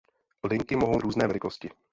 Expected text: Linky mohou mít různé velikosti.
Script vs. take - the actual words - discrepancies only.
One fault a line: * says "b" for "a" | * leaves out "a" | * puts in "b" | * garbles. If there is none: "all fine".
* leaves out "mít"